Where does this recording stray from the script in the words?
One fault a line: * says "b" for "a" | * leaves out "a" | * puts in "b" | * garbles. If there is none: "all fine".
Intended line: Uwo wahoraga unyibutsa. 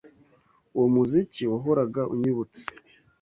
* puts in "muziki"